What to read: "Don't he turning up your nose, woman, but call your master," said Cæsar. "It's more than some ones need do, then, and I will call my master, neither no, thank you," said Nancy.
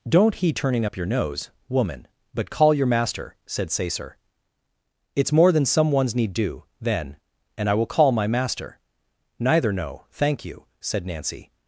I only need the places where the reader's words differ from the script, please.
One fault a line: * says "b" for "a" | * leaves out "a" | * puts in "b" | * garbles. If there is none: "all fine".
all fine